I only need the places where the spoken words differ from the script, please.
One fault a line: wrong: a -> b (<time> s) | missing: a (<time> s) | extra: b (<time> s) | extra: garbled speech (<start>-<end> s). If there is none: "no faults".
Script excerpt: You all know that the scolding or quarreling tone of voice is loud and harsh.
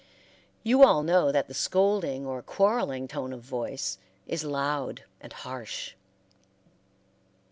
no faults